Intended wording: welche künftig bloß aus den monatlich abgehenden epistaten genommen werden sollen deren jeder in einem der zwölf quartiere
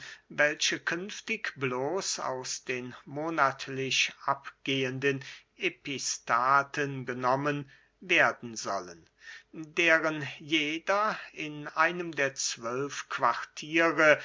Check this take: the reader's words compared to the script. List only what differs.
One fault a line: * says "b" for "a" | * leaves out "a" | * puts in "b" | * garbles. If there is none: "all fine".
all fine